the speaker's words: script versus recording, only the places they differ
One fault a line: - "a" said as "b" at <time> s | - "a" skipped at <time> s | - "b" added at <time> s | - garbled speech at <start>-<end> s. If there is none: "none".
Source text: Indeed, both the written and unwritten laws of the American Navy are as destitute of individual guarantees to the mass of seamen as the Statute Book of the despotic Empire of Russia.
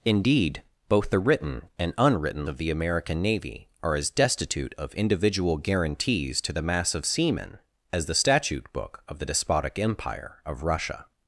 - "laws" skipped at 2.5 s